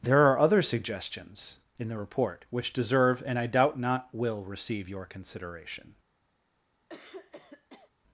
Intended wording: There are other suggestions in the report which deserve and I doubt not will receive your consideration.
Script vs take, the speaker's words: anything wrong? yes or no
no